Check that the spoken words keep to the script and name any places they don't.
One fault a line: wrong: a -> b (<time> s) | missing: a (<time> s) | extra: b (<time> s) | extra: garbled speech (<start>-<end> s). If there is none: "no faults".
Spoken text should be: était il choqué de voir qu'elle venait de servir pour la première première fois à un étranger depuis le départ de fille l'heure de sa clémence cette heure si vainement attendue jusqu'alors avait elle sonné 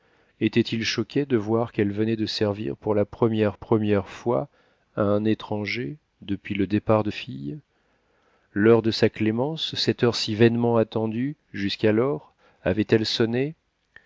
no faults